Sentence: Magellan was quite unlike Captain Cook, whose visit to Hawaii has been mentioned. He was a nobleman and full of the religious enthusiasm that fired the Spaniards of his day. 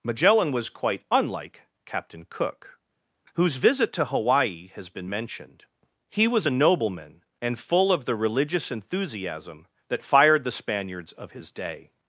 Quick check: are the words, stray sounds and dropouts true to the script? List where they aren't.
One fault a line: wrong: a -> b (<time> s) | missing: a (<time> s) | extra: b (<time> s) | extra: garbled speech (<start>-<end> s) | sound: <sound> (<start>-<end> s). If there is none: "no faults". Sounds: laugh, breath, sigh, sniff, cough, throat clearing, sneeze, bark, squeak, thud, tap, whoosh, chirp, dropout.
no faults